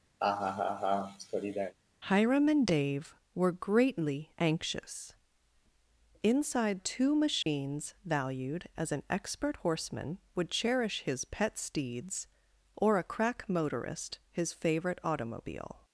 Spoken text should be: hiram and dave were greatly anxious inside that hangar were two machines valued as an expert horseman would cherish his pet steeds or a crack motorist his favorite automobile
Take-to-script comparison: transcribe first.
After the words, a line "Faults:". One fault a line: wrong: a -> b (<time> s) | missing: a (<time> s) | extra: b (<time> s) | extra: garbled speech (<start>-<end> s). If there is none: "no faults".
hiram and dave were greatly anxious inside two machines valued as an expert horseman would cherish his pet steeds or a crack motorist his favorite automobile
Faults:
missing: that hangar were (6.8 s)